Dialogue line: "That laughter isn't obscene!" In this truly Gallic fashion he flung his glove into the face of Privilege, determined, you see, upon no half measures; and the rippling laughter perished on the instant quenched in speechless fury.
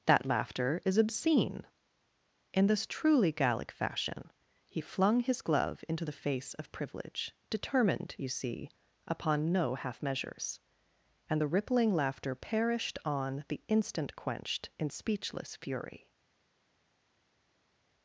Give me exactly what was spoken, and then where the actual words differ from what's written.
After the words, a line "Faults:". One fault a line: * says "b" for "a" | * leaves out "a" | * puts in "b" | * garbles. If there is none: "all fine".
"That laughter is obscene!" In this truly Gallic fashion he flung his glove into the face of Privilege, determined, you see, upon no half measures; and the rippling laughter perished on the instant quenched in speechless fury.
Faults:
* says "is" for "isn't"